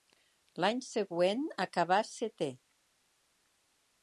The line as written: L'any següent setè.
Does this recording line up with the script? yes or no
no